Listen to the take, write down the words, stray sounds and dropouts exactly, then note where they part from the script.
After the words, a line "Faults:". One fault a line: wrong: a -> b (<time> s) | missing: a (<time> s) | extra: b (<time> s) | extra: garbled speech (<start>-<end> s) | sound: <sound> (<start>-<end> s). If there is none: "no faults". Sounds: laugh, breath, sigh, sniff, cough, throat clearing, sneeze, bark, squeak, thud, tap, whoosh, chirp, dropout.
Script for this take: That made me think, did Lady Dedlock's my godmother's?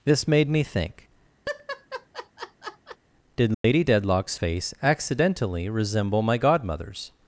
This made me think, did Lady Dedlock's face accidentally resemble my godmother's?
Faults:
wrong: That -> This (0.0 s)
sound: laugh (1.5-3.0 s)
sound: dropout (3.5-3.6 s)
extra: face accidentally resemble (4.3 s)